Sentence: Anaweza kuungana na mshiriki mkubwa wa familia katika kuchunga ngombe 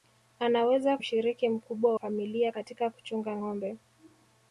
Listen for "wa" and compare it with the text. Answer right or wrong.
wrong